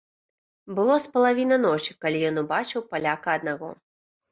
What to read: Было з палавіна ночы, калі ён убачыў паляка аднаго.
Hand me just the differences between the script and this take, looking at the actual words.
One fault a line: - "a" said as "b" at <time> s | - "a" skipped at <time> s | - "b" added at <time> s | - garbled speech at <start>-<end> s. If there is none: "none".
none